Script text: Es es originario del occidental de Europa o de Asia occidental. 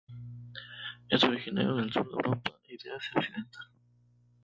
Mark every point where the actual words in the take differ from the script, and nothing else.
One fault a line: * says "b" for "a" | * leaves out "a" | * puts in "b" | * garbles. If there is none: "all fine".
* leaves out "es"
* says "sur" for "occidental"
* says "y" for "o"